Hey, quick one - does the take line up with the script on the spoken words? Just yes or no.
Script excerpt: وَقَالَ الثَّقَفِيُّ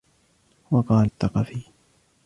yes